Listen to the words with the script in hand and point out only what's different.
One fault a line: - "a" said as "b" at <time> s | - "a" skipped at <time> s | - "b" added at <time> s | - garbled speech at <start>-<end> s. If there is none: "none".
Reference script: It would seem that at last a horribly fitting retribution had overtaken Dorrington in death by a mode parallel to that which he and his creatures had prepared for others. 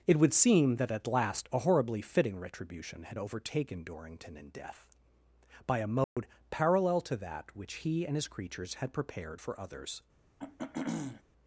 none